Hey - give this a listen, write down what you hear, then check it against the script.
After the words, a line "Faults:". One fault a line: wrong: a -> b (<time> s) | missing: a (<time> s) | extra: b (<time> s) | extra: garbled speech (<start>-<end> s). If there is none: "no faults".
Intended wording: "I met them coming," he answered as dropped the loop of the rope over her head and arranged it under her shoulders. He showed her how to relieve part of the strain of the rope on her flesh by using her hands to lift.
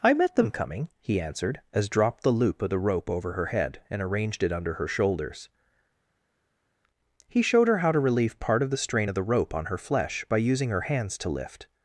"I met them coming," he answered as dropped the loop of the rope over her head and arranged it under her shoulders. He showed her how to relieve part of the strain of the rope on her flesh by using her hands to lift.
Faults:
no faults